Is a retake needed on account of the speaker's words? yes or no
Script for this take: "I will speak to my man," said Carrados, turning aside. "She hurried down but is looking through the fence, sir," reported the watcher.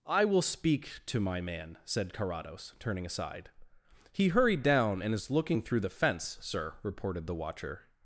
yes